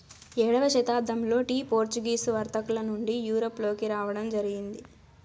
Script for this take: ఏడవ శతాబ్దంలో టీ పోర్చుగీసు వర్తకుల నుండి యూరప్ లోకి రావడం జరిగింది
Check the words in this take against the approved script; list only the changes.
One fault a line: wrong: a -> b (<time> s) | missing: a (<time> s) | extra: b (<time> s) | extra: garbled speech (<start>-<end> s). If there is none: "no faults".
no faults